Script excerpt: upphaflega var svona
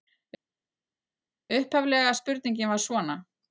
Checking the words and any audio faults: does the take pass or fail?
fail